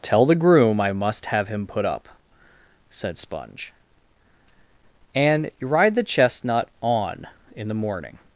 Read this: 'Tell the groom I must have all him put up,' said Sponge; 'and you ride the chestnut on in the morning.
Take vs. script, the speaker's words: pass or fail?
fail